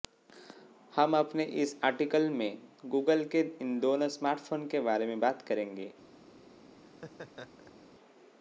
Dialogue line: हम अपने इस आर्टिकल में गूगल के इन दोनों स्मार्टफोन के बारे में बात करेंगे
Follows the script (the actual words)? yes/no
yes